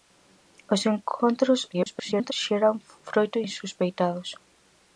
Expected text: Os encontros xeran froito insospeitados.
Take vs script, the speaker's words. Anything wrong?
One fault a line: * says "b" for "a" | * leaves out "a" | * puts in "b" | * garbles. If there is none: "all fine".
* garbles